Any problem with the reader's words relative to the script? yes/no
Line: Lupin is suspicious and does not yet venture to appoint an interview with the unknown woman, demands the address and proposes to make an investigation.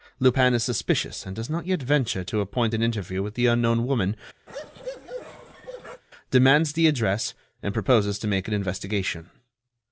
no